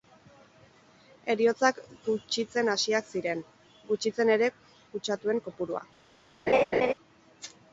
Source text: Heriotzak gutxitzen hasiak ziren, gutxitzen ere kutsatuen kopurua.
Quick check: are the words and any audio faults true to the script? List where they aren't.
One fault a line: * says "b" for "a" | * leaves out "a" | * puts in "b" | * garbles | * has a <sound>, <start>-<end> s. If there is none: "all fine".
* has a laugh, 6.5-6.9 s